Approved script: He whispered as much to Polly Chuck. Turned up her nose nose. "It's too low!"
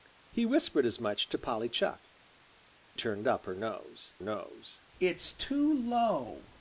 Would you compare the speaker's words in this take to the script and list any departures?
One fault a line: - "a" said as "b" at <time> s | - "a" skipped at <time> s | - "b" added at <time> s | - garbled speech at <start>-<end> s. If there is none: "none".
none